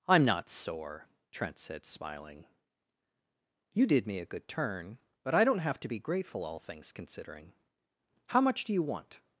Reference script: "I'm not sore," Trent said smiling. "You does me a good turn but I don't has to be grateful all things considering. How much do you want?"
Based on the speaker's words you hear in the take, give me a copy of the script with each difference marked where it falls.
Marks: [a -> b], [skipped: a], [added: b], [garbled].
"I'm not sore," Trent said smiling. "You [does -> did] me a good turn but I don't [has -> have] to be grateful all things considering. How much do you want?"